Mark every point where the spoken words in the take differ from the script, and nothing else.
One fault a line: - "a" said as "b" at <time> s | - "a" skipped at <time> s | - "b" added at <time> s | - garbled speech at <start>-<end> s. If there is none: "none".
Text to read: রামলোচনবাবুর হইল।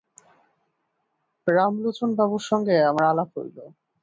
- "সঙ্গে আমার আলাপ" added at 2.5 s